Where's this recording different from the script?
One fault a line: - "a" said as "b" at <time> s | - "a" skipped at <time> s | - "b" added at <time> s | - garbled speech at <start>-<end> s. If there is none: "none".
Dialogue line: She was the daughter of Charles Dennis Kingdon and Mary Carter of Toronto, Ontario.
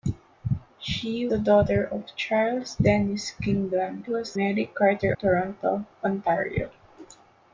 - "was" skipped at 1.3 s
- "and" said as "was" at 4.0 s
- "of" skipped at 5.1 s